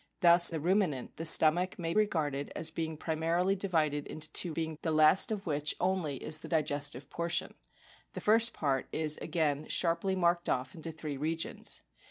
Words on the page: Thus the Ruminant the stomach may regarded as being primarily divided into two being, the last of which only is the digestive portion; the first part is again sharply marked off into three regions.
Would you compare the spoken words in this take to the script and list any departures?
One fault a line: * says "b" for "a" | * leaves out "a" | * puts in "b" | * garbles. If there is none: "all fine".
all fine